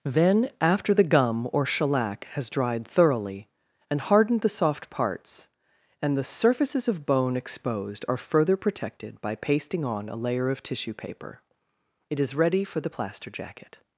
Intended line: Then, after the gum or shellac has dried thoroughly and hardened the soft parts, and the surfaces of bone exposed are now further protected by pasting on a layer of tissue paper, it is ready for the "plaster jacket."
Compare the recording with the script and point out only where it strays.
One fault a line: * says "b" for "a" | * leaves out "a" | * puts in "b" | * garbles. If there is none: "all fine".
* leaves out "now"